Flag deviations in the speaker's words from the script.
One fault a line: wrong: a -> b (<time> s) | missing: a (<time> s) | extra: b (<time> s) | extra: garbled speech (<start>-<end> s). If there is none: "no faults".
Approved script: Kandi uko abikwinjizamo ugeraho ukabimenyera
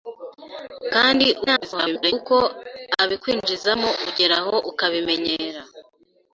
extra: garbled speech (1.5-2.1 s)